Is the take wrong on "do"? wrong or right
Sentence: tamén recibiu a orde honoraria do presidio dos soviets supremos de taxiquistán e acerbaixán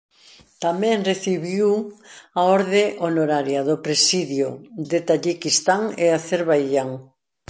right